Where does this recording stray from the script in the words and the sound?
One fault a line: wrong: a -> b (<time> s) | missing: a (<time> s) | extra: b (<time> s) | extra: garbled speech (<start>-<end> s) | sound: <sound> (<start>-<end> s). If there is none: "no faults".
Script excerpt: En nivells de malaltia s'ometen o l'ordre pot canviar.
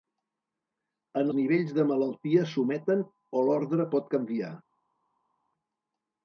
no faults